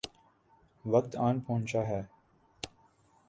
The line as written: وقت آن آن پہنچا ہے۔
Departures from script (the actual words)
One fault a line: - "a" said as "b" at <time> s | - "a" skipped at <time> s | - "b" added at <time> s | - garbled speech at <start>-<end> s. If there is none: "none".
- "آن" skipped at 1.4 s